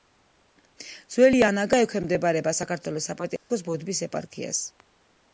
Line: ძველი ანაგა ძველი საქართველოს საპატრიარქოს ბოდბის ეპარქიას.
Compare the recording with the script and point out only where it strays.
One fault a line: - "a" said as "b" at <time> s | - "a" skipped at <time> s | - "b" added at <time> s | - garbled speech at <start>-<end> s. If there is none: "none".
- "ძველი" said as "ექვემდებარება" at 1.8 s